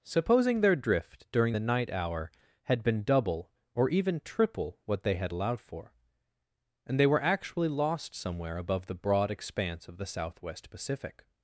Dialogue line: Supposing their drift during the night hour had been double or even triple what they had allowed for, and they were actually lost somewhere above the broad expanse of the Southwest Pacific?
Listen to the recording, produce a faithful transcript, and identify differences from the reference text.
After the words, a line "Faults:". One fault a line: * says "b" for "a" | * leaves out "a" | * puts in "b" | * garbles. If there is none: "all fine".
Supposing their drift during the night hour had been double or even triple what they had allowed for, and they were actually lost somewhere above the broad expanse of the Southwest Pacific?
Faults:
all fine